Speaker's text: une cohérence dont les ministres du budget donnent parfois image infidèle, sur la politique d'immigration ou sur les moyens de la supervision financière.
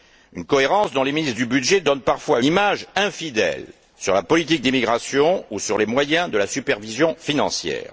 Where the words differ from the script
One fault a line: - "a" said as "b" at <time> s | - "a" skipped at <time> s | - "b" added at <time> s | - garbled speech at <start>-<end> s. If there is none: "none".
none